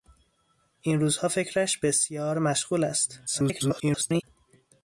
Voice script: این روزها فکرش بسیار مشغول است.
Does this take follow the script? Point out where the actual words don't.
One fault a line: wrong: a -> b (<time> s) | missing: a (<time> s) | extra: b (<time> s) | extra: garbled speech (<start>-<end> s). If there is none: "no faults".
extra: garbled speech (3.3-4.2 s)